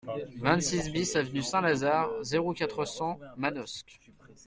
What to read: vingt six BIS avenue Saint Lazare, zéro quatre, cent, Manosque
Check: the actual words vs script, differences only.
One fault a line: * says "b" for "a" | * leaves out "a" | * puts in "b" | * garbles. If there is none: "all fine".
all fine